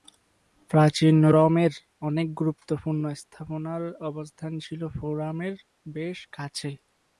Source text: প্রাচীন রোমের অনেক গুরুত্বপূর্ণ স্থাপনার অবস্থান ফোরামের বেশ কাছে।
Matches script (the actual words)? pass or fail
fail